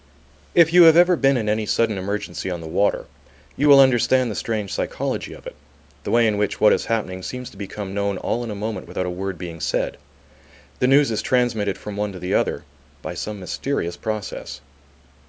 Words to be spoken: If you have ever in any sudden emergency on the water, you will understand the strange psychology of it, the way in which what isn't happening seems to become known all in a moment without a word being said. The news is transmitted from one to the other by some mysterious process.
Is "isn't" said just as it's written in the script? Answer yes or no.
no